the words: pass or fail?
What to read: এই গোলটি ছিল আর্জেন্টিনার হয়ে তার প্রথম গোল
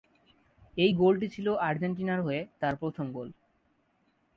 pass